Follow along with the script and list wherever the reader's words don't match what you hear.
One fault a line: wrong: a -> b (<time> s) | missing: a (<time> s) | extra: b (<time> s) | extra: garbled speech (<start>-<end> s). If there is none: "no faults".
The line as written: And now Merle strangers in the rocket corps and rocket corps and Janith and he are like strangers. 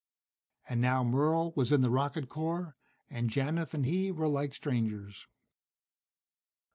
wrong: strangers -> was (1.6 s)
missing: rocket corps and (3.3 s)
wrong: are -> were (4.1 s)